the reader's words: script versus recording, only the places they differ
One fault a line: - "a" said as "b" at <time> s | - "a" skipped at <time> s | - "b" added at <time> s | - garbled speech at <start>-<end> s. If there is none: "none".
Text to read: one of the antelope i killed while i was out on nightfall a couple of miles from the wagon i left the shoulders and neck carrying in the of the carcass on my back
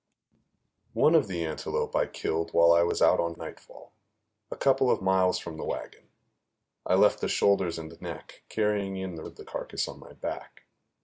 none